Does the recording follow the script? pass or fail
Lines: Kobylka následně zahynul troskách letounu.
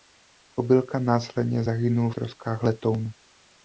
pass